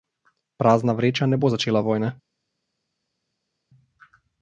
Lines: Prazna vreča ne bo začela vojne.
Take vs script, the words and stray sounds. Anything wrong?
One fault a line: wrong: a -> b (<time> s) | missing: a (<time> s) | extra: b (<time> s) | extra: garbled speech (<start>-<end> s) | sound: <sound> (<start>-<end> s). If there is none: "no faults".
no faults